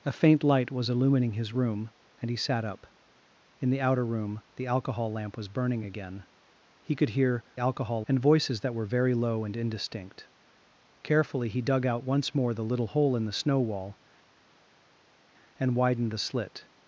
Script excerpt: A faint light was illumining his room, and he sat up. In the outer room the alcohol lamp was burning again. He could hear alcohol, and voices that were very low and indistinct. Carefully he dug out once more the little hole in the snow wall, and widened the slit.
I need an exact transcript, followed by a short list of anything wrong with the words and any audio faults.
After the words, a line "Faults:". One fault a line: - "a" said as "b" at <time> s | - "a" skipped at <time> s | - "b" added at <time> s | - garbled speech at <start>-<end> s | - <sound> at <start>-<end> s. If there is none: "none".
A faint light was illumining his room, and he sat up. In the outer room the alcohol lamp was burning again. He could hear alcohol, and voices that were very low and indistinct. Carefully he dug out once more the little hole in the snow wall, and widened the slit.
Faults:
none